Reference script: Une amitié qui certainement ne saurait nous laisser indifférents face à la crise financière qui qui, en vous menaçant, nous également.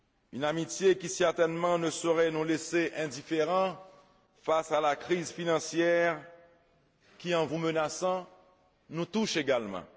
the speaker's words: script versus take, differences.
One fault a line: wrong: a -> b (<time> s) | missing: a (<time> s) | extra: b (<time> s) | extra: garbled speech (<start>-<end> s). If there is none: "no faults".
missing: qui (7.3 s)
extra: touche (9.0 s)